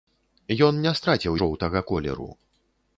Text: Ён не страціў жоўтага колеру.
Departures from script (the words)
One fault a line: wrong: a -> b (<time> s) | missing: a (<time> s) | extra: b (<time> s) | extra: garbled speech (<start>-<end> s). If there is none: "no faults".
no faults